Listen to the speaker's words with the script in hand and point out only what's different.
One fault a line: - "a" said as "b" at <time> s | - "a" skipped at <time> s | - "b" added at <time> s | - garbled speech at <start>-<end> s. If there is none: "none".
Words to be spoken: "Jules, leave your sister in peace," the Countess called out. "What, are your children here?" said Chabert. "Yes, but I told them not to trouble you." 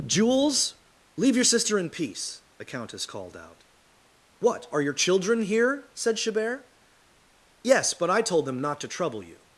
none